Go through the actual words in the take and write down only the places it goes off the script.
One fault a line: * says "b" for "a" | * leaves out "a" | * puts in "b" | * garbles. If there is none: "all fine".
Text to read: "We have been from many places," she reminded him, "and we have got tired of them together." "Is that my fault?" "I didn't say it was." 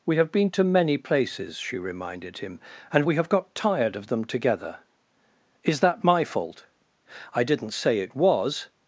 * says "to" for "from"